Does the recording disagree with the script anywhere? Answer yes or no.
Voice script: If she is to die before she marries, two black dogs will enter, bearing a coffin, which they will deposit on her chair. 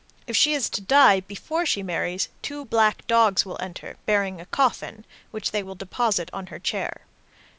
no